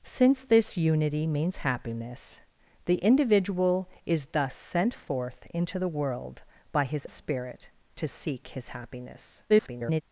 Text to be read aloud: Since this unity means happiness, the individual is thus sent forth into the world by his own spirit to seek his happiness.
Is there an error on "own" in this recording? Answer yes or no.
yes